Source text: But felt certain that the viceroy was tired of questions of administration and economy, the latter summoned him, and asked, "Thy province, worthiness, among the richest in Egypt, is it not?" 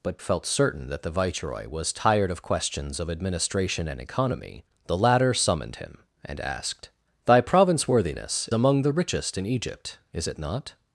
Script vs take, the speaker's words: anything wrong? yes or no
no